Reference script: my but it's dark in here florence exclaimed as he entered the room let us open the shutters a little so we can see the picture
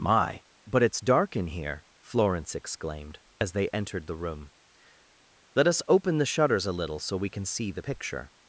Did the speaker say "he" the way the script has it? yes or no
no